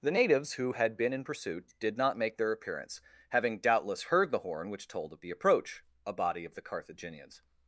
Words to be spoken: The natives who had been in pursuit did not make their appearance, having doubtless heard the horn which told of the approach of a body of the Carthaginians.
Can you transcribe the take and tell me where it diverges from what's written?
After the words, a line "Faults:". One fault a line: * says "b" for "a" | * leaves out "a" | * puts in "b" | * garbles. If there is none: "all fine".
The natives who had been in pursuit did not make their appearance, having doubtless heard the horn which told of the approach a body of the Carthaginians.
Faults:
* leaves out "of"